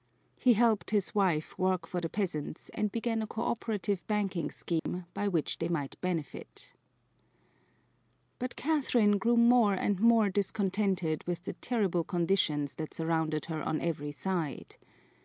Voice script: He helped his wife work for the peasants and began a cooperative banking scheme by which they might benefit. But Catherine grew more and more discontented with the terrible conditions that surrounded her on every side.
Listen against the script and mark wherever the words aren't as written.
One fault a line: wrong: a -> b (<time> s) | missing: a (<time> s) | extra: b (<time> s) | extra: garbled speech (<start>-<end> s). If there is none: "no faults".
no faults